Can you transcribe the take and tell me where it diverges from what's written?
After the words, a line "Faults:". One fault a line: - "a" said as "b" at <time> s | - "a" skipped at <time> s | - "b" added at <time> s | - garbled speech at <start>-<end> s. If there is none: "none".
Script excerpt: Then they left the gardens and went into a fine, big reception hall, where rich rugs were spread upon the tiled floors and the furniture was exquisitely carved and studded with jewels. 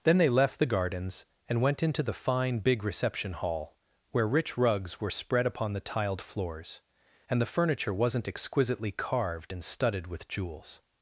Then they left the gardens and went into the fine, big reception hall, where rich rugs were spread upon the tiled floors and the furniture wasn't exquisitely carved and studded with jewels.
Faults:
- "a" said as "the" at 2.0 s
- "was" said as "wasn't" at 7.9 s